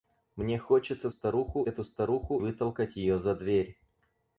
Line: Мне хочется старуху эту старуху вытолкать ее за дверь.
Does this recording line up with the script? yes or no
yes